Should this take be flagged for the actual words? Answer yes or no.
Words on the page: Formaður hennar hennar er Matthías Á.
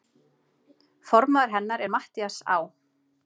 yes